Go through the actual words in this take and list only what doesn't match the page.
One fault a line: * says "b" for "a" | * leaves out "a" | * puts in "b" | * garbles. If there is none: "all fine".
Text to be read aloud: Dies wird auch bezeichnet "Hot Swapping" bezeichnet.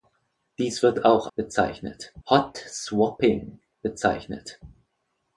all fine